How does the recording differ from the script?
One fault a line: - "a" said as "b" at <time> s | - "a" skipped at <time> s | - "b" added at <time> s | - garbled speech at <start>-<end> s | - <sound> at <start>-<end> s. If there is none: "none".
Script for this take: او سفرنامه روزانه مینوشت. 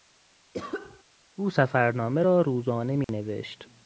- cough at 0.5-1.0 s
- "را" added at 2.2 s
- dropout at 3.0-3.1 s